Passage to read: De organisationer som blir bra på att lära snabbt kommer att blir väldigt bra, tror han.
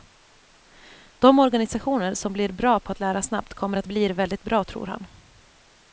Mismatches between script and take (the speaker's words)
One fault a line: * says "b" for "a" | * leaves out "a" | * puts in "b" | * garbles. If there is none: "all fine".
all fine